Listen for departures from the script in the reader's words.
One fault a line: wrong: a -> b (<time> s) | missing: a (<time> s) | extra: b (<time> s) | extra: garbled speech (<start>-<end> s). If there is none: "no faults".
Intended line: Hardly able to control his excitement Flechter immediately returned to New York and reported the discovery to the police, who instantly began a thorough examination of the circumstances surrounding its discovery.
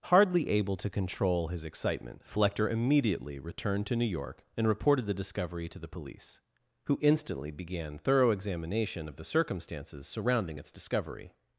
missing: a (8.0 s)